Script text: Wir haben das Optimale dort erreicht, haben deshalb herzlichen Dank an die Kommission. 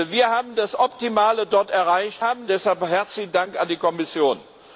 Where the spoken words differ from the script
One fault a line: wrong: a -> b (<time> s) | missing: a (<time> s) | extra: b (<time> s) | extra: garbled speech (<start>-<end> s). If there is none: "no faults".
no faults